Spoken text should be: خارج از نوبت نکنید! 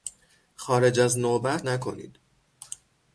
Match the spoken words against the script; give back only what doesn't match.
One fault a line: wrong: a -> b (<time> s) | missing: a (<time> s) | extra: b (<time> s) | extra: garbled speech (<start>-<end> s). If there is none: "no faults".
no faults